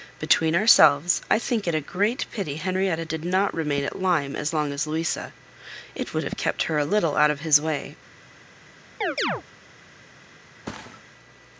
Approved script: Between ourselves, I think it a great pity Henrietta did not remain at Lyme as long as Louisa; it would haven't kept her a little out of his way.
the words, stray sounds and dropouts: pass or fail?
fail